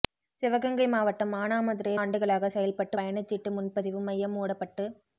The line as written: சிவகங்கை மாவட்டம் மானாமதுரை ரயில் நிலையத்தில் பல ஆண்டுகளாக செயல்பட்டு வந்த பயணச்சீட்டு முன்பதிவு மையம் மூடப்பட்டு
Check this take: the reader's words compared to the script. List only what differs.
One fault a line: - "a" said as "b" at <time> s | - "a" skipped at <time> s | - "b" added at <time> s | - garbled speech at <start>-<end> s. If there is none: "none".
- "ரயில் நிலையத்தில் பல" skipped at 1.9 s
- "வந்த" skipped at 3.0 s